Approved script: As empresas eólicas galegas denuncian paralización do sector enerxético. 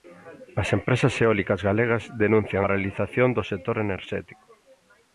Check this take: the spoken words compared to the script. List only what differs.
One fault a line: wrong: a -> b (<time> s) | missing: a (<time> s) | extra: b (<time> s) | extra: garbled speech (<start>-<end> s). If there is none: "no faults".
no faults